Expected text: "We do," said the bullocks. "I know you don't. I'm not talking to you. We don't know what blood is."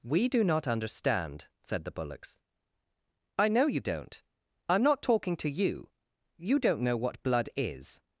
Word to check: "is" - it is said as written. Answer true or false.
true